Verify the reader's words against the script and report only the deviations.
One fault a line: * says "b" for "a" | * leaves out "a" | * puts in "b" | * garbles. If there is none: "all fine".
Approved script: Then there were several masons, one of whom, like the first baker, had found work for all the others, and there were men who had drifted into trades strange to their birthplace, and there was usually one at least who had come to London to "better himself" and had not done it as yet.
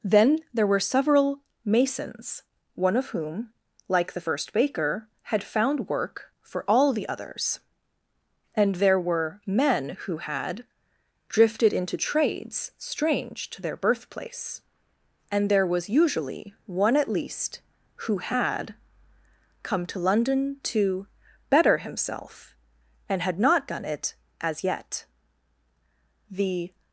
* puts in "The"